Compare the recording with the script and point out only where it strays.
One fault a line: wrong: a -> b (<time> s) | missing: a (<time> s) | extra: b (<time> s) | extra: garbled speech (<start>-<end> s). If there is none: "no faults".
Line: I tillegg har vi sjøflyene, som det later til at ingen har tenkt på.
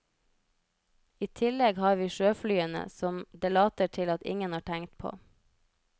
no faults